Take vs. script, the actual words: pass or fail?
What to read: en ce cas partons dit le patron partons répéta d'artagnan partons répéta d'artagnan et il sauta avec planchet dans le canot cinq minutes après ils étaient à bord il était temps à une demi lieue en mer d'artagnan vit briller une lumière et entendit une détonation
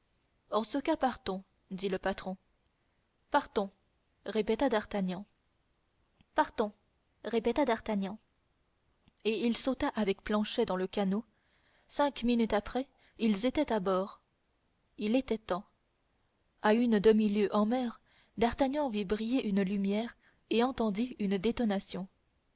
pass